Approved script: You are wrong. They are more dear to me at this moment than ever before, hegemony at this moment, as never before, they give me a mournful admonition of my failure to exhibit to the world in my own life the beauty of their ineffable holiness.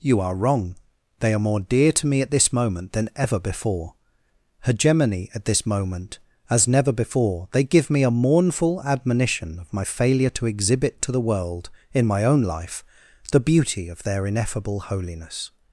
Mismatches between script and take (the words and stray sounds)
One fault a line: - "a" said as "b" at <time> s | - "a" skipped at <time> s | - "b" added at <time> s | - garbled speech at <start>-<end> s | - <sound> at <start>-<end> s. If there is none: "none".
none